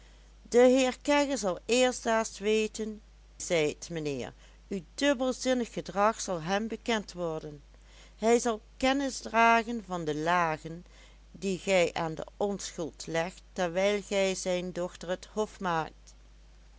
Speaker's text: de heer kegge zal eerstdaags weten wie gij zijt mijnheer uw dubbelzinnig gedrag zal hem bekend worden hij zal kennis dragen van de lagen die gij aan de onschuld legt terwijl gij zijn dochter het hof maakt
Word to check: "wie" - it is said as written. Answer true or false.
false